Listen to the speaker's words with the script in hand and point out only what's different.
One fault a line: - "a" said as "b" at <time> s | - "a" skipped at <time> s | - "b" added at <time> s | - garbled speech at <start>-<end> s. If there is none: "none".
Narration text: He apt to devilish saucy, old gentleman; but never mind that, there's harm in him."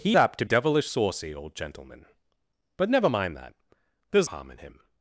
none